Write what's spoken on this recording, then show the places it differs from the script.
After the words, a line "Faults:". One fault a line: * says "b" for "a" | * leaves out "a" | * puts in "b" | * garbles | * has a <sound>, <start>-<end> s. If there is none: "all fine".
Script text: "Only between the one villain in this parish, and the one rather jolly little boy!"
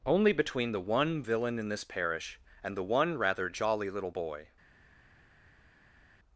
"Only between the one villain in this parish, and the one rather jolly little boy!"
Faults:
all fine